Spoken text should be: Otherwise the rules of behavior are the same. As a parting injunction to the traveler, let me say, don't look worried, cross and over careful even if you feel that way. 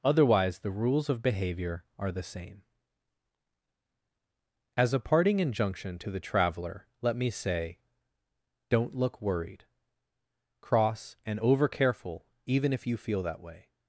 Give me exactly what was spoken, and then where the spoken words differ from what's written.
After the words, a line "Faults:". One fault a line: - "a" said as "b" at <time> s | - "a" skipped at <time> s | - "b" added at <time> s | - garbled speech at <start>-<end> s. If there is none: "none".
Otherwise the rules of behavior are the same. As a parting injunction to the traveler, let me say, don't look worried, cross and over careful even if you feel that way.
Faults:
none